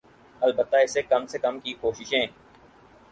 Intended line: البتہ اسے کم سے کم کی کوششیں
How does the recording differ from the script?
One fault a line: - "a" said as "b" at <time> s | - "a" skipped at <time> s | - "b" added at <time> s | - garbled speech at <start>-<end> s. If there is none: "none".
none